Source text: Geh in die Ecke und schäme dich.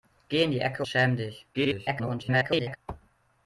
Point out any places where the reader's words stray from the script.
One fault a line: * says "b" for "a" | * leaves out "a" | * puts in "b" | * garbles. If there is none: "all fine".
* leaves out "und"
* garbles